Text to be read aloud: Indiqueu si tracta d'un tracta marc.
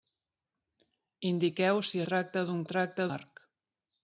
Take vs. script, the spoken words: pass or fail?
pass